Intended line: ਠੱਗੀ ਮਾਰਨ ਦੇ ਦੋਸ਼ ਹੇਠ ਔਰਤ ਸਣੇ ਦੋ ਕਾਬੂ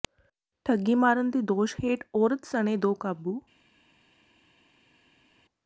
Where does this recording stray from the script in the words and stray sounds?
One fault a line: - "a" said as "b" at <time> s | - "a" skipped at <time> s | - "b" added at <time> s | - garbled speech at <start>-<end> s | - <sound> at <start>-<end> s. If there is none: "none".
none